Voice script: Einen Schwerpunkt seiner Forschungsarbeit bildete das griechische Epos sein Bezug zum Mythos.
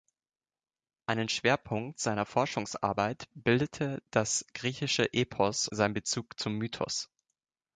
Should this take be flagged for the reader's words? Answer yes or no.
no